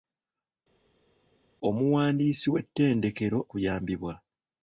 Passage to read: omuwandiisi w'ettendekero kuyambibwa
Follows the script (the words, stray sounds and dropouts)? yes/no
yes